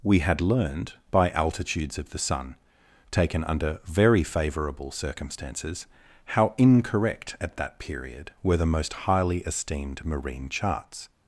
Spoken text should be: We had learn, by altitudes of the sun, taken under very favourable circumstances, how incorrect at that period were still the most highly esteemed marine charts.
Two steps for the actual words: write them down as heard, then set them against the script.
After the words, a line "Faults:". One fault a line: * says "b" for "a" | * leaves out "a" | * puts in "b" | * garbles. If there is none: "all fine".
We had learned, by altitudes of the sun, taken under very favourable circumstances, how incorrect at that period were the most highly esteemed marine charts.
Faults:
* says "learned" for "learn"
* leaves out "still"